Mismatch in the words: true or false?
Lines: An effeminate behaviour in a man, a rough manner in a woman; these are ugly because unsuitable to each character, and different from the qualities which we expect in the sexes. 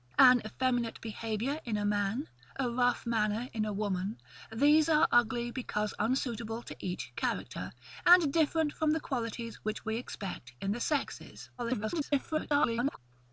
true